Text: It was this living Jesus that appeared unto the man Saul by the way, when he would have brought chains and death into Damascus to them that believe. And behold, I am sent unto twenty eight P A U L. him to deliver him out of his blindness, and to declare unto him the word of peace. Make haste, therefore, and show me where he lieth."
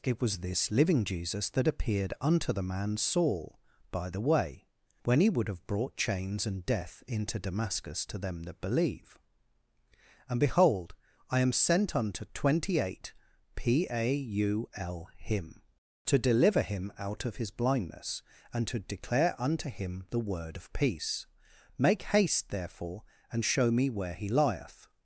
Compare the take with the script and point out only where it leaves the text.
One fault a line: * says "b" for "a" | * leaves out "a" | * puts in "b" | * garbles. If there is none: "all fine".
all fine